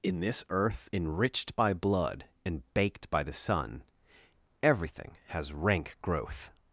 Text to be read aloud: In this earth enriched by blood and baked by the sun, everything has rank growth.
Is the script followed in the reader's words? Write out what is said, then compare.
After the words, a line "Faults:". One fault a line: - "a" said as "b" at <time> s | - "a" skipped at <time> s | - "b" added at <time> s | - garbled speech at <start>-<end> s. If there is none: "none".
In this earth enriched by blood and baked by the sun, everything has rank growth.
Faults:
none